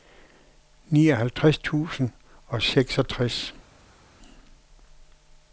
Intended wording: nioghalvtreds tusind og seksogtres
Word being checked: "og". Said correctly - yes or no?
yes